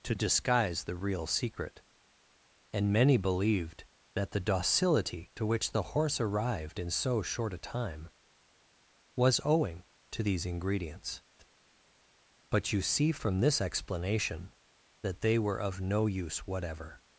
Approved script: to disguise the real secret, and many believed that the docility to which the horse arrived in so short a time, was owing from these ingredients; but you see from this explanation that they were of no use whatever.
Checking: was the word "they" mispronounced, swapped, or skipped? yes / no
no